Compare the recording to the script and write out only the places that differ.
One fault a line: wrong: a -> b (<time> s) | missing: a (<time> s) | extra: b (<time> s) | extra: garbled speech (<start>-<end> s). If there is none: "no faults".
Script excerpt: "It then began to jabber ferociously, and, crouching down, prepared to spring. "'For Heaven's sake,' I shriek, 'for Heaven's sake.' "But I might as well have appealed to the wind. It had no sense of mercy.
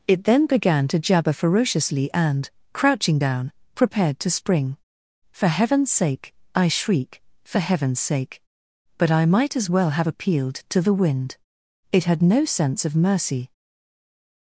no faults